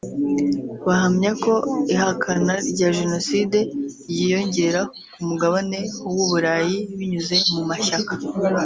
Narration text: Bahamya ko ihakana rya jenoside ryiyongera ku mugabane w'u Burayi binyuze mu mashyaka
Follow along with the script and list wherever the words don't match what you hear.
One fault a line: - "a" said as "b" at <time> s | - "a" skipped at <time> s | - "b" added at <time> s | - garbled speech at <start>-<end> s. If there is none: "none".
none